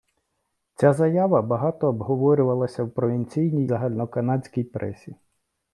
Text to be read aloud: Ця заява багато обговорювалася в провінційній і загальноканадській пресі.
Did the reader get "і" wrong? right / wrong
wrong